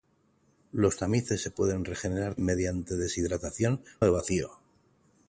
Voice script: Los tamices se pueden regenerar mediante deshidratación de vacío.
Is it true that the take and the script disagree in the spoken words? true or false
false